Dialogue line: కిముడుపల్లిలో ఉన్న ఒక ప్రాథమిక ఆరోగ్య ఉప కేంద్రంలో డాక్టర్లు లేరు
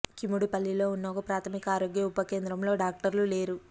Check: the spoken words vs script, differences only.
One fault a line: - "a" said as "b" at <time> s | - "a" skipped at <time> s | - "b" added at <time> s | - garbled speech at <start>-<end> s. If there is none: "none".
none